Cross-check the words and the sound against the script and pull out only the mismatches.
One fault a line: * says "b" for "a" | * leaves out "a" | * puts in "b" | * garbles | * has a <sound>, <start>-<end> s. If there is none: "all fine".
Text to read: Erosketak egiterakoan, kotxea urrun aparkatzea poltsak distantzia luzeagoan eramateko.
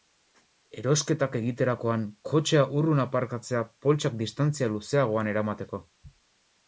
all fine